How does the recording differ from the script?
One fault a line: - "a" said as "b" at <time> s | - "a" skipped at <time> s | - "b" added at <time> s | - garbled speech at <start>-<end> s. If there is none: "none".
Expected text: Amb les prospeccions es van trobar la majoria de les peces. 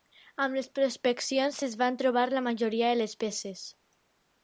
none